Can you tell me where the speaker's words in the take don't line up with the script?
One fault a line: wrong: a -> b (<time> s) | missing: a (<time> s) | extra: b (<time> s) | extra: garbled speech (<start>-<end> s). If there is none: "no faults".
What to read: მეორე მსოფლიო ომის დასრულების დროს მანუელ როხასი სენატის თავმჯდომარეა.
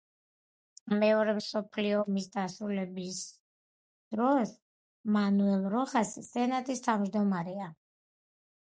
no faults